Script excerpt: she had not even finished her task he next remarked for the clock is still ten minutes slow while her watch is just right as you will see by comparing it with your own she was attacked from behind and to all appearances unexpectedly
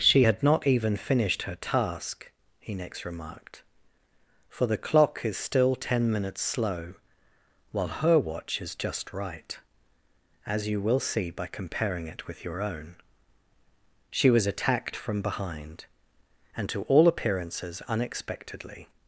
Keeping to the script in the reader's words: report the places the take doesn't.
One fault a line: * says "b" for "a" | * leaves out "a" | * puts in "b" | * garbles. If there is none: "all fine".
all fine